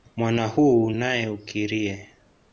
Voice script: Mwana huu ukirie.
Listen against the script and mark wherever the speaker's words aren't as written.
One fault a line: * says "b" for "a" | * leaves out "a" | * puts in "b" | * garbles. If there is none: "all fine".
* puts in "nae"